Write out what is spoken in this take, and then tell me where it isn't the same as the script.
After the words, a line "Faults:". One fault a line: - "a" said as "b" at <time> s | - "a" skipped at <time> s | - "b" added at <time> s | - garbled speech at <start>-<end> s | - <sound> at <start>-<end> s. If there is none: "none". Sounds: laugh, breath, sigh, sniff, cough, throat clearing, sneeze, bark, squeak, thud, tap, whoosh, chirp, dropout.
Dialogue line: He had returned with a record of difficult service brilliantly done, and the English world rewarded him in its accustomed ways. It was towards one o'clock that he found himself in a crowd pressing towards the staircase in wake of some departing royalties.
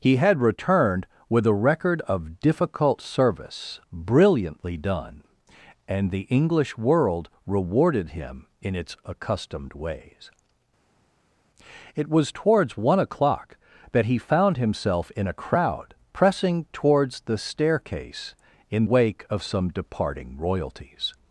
He had returned with a record of difficult service brilliantly done, and the English world rewarded him in its accustomed ways. It was towards one o'clock that he found himself in a crowd pressing towards the staircase in wake of some departing royalties.
Faults:
none